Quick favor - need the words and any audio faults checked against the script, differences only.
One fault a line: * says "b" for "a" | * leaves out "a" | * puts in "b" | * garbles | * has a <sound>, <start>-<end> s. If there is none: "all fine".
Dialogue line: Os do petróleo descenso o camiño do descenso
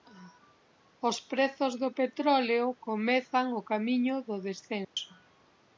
* puts in "prezos"
* says "comezan" for "descenso"
* has a dropout, 4.8-5.0 s